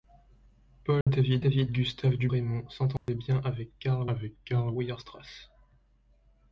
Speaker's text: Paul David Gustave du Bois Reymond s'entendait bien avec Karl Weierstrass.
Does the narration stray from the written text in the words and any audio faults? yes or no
yes